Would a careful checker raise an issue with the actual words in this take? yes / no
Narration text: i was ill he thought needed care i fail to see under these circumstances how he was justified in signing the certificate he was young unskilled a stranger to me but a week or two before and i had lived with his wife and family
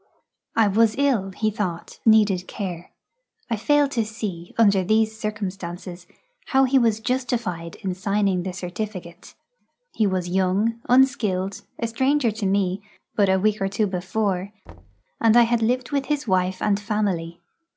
no